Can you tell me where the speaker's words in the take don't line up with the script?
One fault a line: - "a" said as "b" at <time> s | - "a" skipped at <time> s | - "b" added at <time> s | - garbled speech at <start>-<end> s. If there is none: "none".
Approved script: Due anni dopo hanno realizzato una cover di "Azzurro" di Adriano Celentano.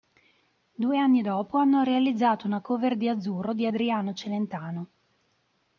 none